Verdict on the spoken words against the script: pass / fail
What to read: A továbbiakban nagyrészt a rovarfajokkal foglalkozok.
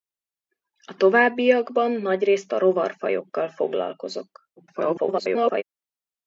fail